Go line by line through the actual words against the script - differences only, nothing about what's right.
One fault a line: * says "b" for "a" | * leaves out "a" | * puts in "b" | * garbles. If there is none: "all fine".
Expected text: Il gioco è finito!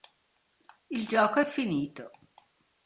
all fine